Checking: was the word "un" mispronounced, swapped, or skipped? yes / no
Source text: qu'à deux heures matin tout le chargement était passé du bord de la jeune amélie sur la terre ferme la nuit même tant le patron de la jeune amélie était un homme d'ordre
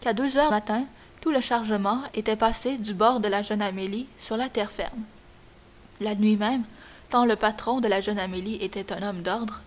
no